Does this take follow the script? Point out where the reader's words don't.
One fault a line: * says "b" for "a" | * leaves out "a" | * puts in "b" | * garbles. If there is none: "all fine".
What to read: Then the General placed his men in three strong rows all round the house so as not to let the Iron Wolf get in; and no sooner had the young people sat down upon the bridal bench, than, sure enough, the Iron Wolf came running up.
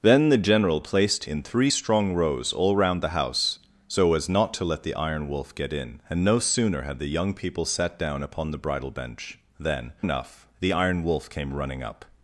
* leaves out "his men"
* leaves out "sure"